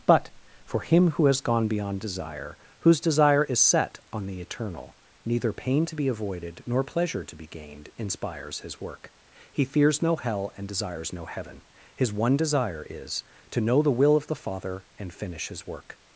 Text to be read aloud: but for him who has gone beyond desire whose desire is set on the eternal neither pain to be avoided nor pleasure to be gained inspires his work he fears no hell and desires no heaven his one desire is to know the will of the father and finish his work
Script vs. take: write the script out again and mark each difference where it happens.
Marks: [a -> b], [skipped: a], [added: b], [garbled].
but for him who has gone beyond desire whose desire is set on the eternal neither pain to be avoided nor pleasure to be gained inspires his work he fears no hell and desires no heaven his one desire is to know the will of the father and finish his work